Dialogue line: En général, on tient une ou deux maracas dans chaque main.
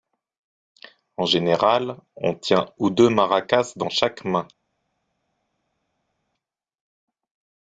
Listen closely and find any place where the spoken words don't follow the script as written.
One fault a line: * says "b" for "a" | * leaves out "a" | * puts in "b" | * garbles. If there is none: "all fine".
* leaves out "une"